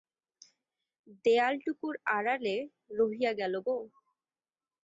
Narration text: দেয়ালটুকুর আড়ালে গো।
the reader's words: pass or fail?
fail